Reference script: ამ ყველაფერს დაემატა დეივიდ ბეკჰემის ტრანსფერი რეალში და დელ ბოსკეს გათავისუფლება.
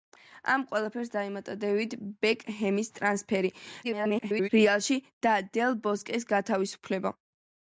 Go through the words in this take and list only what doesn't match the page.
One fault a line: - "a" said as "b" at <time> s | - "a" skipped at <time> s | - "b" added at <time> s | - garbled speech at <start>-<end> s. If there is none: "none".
- garbled speech at 3.8-4.5 s